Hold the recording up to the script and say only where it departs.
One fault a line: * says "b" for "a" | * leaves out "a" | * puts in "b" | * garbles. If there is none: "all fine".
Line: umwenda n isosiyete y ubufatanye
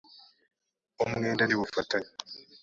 * leaves out "isosiyete"